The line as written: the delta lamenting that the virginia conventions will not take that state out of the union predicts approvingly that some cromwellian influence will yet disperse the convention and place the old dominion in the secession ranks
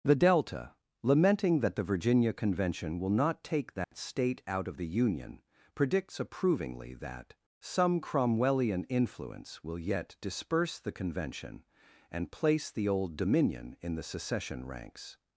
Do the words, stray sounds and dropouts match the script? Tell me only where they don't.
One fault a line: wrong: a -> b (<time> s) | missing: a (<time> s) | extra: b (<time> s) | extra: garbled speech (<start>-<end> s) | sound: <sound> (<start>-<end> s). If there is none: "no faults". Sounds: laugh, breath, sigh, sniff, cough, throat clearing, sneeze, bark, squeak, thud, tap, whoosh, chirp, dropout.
wrong: conventions -> convention (2.3 s)
sound: dropout (3.8-3.9 s)